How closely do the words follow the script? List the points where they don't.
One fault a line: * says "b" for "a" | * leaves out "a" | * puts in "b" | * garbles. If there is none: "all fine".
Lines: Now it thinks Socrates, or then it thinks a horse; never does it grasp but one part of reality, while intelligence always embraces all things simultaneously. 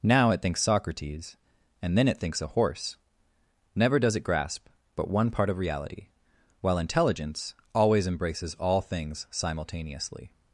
* says "and" for "or"